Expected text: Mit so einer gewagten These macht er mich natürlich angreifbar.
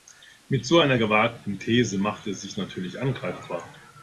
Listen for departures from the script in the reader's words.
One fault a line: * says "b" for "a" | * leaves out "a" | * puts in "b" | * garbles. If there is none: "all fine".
* says "sich" for "mich"